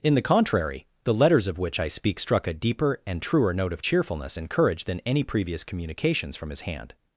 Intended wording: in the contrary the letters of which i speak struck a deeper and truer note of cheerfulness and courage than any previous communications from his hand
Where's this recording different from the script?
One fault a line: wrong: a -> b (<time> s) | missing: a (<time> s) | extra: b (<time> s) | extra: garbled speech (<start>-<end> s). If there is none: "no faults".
no faults